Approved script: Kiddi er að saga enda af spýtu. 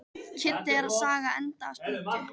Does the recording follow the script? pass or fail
pass